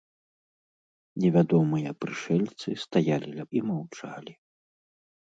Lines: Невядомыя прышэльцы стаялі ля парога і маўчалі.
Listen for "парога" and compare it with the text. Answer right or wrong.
wrong